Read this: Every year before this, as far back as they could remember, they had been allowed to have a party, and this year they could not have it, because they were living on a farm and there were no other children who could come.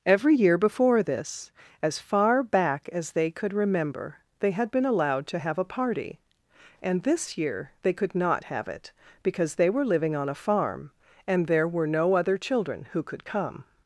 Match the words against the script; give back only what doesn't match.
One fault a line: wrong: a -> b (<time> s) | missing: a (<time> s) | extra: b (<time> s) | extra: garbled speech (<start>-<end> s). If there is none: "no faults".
no faults